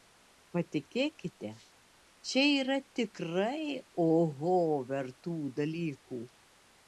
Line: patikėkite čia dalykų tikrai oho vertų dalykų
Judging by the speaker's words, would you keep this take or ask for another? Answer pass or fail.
fail